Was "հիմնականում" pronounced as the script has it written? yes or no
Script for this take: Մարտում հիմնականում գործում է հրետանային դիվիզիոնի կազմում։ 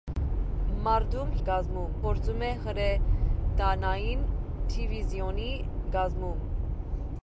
no